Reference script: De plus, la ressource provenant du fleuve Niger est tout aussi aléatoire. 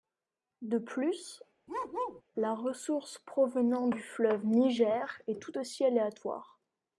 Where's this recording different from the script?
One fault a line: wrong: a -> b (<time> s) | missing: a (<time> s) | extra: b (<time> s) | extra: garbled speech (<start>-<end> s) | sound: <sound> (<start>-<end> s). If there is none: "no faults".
sound: bark (1.7-2.2 s)